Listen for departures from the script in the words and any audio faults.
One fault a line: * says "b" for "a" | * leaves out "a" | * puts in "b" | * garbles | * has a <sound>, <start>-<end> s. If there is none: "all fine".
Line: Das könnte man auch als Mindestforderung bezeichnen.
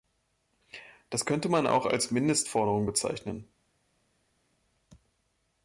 all fine